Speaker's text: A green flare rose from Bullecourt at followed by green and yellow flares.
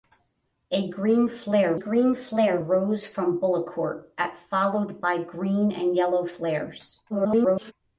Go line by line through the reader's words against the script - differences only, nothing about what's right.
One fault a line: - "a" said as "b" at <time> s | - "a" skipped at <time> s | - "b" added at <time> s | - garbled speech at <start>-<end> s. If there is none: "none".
- "green flare" added at 1.8 s
- garbled speech at 7.1-7.7 s